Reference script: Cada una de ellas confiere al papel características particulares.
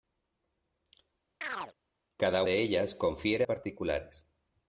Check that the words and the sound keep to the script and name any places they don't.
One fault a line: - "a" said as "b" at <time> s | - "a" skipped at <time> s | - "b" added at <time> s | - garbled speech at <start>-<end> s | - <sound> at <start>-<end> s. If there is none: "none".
- chirp at 1.4-1.7 s
- "una" skipped at 2.4 s
- "al papel características" skipped at 3.4 s